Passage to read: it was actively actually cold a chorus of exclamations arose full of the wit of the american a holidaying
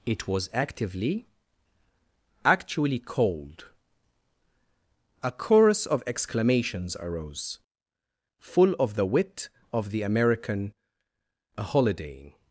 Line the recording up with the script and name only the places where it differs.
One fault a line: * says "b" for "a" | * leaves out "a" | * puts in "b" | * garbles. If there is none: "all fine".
all fine